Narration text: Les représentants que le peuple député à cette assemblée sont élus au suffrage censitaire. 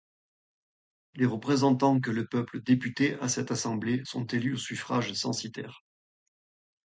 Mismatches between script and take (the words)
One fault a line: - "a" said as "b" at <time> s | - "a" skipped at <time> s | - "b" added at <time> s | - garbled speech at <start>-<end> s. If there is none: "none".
none